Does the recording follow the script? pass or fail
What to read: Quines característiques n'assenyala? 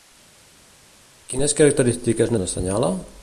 pass